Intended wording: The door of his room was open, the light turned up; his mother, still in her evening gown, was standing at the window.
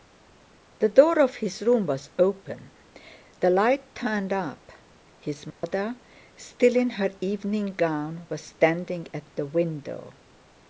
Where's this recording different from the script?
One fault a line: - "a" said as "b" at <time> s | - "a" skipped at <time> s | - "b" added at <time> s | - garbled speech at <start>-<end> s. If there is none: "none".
none